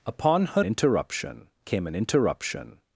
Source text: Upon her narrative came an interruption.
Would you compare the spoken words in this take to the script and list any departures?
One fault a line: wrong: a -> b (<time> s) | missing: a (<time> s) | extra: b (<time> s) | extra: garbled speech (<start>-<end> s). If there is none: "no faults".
wrong: narrative -> interruption (0.6 s)